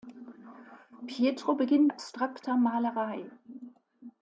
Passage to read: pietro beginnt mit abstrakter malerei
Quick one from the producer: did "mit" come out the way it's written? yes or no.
no